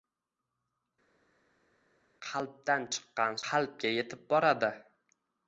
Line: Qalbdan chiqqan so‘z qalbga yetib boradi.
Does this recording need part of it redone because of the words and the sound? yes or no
yes